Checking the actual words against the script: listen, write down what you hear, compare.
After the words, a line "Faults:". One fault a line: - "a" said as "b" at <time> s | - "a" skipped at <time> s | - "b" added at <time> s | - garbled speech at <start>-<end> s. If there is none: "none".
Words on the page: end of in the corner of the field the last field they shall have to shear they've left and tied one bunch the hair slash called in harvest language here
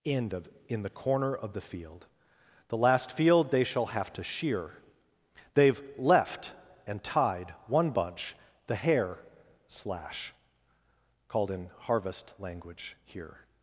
end of in the corner of the field the last field they shall have to shear they've left and tied one bunch the hair slash called in harvest language here
Faults:
none